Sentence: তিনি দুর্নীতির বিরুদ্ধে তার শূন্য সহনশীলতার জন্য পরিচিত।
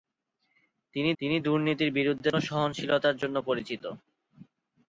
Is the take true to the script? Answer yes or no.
no